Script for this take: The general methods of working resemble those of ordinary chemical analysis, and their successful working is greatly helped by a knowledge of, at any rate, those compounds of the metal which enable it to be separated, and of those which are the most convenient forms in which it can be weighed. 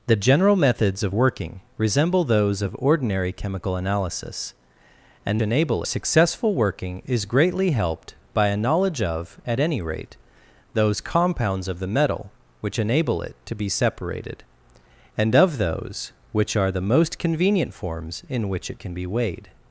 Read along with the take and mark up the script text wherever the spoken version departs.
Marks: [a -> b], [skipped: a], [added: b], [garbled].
The general methods of working resemble those of ordinary chemical analysis, and [their -> enable] successful working is greatly helped by a knowledge of, at any rate, those compounds of the metal which enable it to be separated, and of those which are the most convenient forms in which it can be weighed.